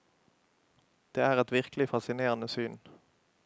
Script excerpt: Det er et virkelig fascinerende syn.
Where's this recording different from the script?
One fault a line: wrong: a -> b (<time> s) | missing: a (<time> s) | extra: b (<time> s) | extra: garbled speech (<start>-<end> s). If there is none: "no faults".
no faults